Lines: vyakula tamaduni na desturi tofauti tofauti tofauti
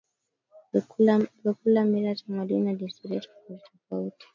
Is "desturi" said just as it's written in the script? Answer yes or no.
yes